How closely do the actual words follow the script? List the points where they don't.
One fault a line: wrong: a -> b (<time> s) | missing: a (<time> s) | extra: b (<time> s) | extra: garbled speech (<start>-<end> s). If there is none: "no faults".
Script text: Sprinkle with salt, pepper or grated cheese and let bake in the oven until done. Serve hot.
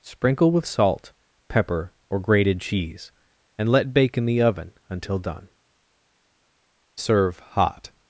no faults